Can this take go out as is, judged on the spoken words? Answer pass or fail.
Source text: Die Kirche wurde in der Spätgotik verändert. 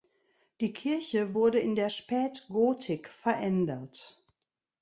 pass